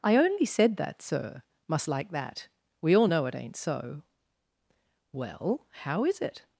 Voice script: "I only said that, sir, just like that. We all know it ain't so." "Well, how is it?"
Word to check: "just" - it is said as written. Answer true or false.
false